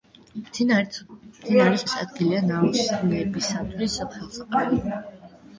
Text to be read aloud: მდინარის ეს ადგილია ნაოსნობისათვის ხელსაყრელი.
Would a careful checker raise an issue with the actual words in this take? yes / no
no